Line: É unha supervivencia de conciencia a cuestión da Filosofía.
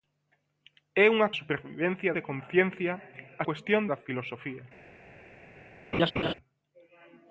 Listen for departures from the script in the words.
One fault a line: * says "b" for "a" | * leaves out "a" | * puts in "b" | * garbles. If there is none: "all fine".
all fine